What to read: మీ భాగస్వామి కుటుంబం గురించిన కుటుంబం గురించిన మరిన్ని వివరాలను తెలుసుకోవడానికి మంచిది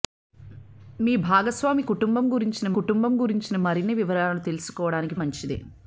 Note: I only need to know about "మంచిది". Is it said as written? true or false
true